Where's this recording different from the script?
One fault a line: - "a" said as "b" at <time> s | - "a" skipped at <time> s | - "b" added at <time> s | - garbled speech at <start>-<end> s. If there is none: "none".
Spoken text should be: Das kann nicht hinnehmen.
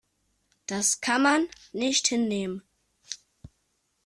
- "man" added at 1.2 s